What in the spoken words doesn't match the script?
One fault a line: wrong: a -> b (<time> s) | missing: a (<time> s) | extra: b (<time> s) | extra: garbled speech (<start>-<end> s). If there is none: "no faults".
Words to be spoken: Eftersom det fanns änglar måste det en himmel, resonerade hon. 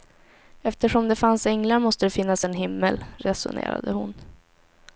extra: finnas (2.1 s)